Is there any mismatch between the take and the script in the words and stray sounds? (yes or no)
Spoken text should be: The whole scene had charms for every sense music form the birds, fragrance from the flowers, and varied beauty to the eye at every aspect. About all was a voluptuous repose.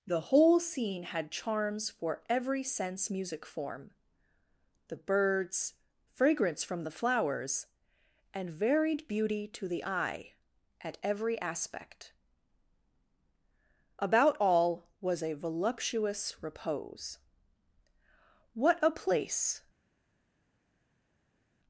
yes